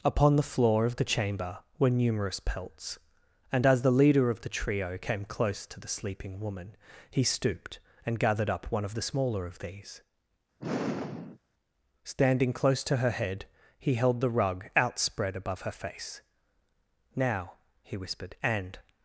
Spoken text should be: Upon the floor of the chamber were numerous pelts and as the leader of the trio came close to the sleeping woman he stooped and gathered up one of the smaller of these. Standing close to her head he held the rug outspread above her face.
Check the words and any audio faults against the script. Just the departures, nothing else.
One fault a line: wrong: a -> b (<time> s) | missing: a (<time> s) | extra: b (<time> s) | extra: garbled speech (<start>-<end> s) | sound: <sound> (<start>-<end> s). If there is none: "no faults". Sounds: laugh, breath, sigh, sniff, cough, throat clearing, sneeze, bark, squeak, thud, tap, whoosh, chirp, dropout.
sound: sigh (10.6-11.4 s)
extra: Now he whispered and (17.2 s)